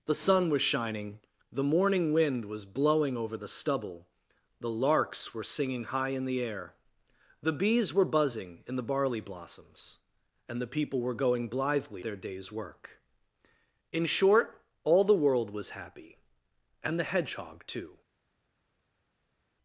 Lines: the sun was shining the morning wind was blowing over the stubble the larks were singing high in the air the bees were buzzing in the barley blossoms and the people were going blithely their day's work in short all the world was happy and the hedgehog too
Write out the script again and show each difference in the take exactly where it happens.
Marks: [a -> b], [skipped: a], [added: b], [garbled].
the sun was shining the morning wind was blowing over the stubble the larks were singing high in the air the bees were buzzing in the barley blossoms and the people were going blithely their day's work in short all the world was happy and the hedgehog too